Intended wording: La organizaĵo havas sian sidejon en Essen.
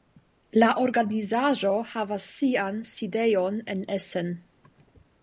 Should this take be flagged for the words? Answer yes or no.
no